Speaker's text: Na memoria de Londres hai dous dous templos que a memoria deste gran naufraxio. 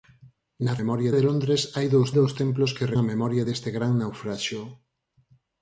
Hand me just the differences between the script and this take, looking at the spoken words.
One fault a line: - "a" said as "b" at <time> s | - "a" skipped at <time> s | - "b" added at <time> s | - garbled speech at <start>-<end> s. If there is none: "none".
none